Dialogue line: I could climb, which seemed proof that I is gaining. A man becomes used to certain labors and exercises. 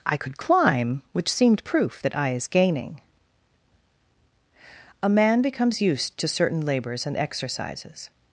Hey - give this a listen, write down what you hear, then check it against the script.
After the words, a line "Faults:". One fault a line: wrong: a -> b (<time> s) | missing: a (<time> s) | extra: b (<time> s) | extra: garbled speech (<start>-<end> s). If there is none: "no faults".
I could climb, which seemed proof that I is gaining. A man becomes used to certain labors and exercises.
Faults:
no faults